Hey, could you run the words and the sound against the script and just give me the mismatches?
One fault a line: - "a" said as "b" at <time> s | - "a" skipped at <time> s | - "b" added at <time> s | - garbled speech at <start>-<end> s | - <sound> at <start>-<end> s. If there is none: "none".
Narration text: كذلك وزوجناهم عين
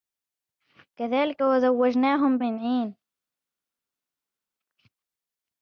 none